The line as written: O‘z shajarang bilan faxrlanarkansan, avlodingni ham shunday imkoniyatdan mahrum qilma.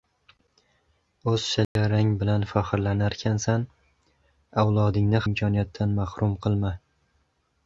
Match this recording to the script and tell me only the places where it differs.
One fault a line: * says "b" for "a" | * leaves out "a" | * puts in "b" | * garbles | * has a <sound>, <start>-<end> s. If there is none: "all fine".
* has a dropout, 1.6-1.8 s
* leaves out "ham shunday"